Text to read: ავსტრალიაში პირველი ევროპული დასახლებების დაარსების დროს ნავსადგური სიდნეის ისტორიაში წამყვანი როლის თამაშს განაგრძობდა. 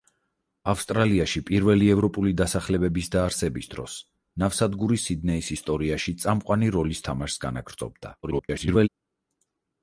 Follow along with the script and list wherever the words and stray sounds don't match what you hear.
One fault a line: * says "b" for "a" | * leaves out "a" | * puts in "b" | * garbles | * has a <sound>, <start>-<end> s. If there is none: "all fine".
* garbles